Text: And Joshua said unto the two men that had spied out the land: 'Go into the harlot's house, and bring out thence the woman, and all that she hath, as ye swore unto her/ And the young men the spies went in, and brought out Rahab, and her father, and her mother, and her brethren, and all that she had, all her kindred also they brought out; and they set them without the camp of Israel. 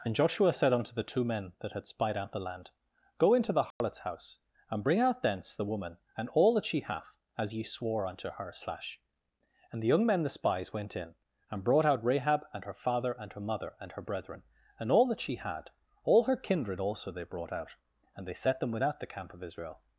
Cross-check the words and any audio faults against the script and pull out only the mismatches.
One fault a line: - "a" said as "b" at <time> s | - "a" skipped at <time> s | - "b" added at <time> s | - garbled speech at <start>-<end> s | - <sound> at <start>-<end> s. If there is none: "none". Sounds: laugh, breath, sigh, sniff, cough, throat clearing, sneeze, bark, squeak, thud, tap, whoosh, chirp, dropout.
- dropout at 3.7-3.8 s
- "slash" added at 8.5 s